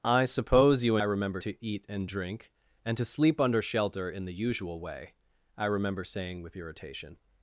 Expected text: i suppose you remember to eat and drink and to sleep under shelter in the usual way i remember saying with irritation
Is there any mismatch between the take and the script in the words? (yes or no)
no